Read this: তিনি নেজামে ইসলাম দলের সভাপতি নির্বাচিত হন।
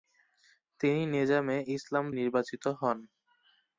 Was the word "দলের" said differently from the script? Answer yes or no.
yes